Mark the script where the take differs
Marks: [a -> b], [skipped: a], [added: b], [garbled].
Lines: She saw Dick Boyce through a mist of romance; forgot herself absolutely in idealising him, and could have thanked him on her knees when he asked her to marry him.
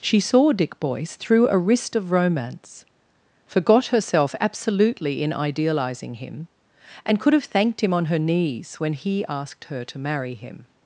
She saw Dick Boyce through a [mist -> wrist] of romance; forgot herself absolutely in idealising him, and could have thanked him on her knees when he asked her to marry him.